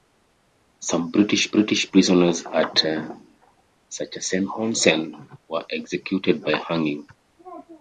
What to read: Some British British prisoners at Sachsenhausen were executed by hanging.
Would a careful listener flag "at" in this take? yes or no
no